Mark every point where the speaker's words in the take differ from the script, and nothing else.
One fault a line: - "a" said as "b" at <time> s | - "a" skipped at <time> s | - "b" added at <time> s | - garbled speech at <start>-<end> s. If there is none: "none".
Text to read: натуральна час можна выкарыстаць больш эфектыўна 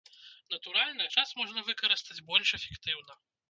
none